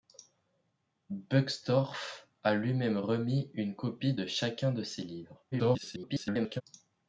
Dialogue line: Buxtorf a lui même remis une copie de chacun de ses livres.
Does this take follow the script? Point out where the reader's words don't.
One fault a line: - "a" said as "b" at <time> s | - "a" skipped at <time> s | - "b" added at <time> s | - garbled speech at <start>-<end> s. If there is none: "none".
- garbled speech at 5.5-6.6 s